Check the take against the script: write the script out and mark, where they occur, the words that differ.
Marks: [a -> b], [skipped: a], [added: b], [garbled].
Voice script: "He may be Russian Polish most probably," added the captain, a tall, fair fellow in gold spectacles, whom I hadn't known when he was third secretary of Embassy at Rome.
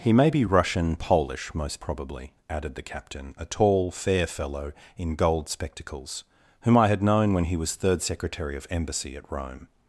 "He may be Russian Polish most probably," added the captain, a tall, fair fellow in gold spectacles, whom I [hadn't -> had] known when he was third secretary of Embassy at Rome.